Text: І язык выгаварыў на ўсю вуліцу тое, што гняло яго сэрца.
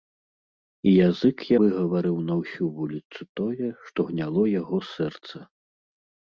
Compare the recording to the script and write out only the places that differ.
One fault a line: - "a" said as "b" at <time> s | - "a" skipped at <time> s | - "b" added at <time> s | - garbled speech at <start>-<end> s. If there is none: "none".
none